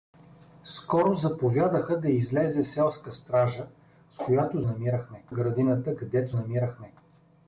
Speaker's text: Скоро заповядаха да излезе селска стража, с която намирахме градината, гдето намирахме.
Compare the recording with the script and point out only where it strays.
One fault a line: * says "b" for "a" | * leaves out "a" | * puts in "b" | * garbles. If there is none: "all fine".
all fine